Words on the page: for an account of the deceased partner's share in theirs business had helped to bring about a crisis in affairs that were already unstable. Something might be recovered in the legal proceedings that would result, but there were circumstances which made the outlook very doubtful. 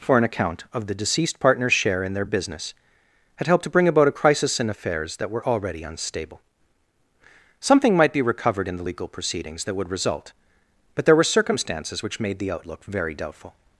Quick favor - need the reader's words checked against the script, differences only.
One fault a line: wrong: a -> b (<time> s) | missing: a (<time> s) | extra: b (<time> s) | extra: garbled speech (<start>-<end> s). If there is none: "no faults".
wrong: theirs -> their (2.1 s)